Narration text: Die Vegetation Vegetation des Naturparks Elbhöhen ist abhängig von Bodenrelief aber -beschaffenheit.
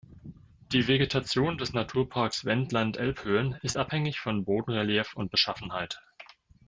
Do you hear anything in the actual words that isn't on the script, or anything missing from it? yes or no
yes